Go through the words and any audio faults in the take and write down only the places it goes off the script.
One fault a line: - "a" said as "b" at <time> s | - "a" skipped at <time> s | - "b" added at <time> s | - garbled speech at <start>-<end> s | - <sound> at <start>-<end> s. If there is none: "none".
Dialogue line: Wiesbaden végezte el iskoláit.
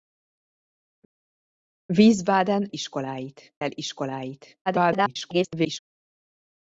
- "végezte" said as "iskoláit" at 2.7 s
- garbled speech at 4.7-5.8 s